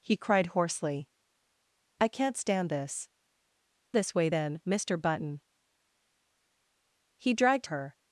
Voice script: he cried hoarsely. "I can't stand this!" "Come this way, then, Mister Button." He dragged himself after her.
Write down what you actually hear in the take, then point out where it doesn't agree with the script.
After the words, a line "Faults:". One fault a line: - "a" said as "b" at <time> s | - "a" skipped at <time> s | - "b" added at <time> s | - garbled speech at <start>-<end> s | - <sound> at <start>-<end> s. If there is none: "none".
he cried hoarsely. "I can't stand this!" "This way, then, Mister Button." He dragged her.
Faults:
- "Come" skipped at 3.1 s
- "himself after" skipped at 7.7 s